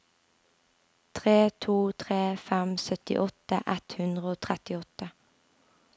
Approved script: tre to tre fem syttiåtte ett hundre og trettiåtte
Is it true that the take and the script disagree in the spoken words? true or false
false